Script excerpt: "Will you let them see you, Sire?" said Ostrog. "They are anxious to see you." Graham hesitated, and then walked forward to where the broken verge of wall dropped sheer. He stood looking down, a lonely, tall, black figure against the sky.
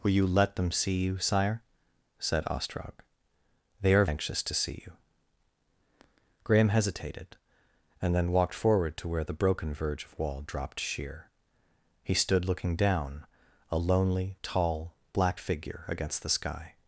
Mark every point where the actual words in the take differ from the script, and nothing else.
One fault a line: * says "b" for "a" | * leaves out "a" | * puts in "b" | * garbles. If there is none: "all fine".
all fine